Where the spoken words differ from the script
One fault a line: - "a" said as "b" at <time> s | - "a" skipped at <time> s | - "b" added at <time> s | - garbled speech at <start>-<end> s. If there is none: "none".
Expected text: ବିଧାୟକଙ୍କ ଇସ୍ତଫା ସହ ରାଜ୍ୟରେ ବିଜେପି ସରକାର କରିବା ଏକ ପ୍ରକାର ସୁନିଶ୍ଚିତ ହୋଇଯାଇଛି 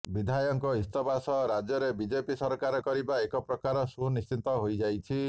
none